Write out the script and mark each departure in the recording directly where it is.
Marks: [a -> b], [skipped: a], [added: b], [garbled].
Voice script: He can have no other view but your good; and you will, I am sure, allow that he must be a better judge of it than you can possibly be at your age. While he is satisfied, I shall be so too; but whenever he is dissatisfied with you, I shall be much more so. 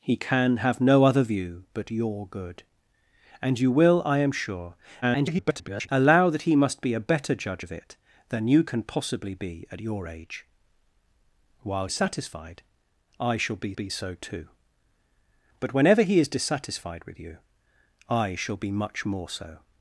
He can have no other view but your good; and you will, I am sure, [garbled] allow that he must be a better judge of it than you can possibly be at your age. While [skipped: he] is satisfied, I shall be [added: be] so too; but whenever he is dissatisfied with you, I shall be much more so.